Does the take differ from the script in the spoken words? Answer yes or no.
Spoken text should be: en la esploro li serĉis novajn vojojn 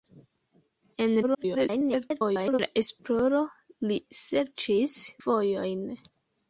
yes